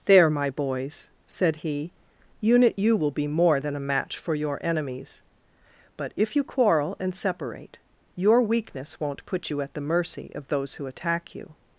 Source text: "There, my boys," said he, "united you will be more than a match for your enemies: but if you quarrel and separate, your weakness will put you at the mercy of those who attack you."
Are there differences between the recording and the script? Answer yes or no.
yes